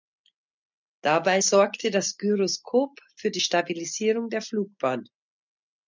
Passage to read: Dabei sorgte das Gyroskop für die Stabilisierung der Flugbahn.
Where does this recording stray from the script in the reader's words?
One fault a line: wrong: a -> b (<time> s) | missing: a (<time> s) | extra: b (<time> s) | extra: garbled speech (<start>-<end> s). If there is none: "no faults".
no faults